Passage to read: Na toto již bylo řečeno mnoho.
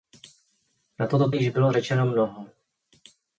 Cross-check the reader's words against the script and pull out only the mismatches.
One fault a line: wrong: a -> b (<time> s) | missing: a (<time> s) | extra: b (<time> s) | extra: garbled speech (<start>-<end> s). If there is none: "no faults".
no faults